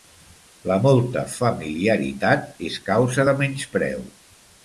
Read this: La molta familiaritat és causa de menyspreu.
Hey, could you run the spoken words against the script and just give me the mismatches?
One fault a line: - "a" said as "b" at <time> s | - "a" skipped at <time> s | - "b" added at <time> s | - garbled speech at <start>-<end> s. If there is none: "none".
none